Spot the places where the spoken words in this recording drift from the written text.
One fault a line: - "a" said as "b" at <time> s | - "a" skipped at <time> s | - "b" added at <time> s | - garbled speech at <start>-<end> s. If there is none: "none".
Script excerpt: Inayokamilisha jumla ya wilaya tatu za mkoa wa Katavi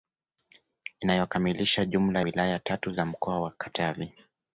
- "ya" skipped at 2.2 s